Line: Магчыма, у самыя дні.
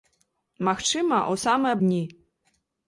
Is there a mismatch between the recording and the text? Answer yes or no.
no